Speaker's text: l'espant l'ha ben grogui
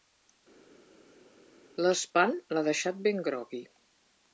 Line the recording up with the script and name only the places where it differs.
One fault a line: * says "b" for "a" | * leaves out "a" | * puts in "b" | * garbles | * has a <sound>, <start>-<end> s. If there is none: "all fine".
* puts in "deixat"